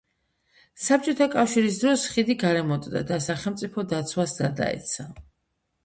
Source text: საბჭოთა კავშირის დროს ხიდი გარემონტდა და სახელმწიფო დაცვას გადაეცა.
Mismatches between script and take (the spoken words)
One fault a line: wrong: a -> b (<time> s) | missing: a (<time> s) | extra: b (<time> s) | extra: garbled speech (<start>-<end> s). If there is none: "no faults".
no faults